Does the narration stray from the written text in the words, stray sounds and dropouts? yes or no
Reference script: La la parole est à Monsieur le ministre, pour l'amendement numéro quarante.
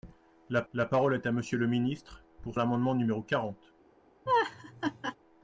yes